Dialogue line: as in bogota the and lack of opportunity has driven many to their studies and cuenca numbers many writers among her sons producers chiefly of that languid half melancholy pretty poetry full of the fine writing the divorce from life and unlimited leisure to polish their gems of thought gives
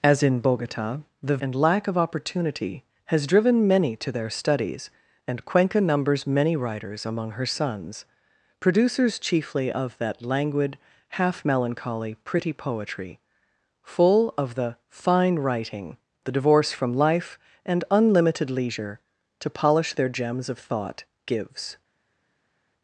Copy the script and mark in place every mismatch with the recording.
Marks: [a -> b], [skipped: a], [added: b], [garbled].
as in bogota the and lack of opportunity has driven many to their studies and cuenca numbers many writers among her sons producers chiefly of that languid half melancholy pretty poetry full of the fine writing the divorce from life and unlimited leisure to polish their gems of thought gives